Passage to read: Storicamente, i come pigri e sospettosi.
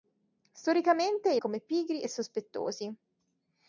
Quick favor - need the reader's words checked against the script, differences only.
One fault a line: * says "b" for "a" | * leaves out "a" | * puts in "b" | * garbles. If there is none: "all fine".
all fine